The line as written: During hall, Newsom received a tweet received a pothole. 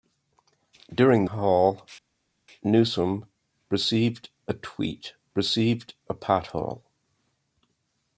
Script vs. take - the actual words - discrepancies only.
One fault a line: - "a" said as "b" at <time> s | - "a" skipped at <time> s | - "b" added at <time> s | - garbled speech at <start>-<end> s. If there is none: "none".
none